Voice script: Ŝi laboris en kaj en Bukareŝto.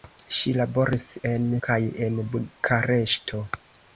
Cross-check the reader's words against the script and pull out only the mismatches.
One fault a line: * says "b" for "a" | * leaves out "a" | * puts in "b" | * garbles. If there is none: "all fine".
all fine